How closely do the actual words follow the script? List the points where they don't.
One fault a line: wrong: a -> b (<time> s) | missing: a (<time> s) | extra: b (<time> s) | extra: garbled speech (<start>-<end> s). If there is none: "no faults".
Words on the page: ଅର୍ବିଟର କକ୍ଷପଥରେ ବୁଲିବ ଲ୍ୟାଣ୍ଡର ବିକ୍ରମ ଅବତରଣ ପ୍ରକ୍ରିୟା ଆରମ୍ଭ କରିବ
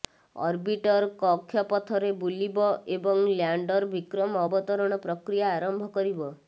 extra: ଏବଂ (3.0 s)